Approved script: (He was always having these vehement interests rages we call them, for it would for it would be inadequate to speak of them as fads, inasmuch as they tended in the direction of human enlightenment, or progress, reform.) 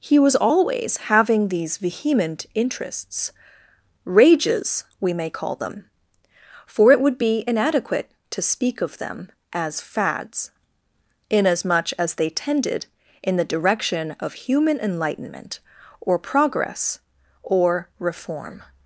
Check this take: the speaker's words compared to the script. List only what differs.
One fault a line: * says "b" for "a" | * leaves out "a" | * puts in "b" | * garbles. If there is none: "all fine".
* puts in "may"
* leaves out "for it would"
* puts in "or"